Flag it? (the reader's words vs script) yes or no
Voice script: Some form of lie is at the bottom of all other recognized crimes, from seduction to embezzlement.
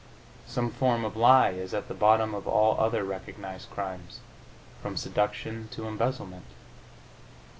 no